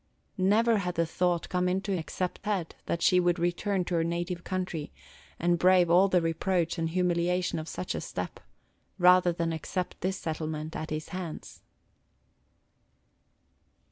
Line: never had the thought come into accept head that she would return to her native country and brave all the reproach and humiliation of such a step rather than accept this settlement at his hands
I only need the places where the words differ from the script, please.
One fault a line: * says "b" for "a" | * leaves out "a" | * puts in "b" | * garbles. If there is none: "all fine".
all fine